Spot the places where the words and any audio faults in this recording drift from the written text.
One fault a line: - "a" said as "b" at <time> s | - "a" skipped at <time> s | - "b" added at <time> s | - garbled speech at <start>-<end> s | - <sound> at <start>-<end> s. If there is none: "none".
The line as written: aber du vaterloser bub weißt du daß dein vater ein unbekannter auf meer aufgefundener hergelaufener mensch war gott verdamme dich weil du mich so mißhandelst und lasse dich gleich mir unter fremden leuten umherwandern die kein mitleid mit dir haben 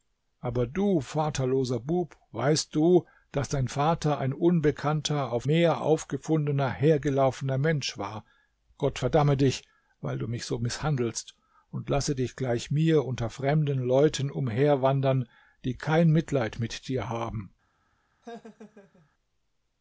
- laugh at 18.2-19.1 s